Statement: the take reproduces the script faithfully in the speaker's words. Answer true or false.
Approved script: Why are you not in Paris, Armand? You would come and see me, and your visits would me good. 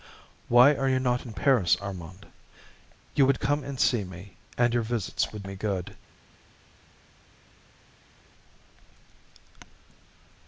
true